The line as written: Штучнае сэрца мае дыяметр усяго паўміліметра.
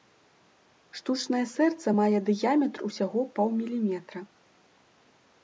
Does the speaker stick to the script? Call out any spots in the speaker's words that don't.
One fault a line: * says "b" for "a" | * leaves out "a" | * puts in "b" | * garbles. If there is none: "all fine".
all fine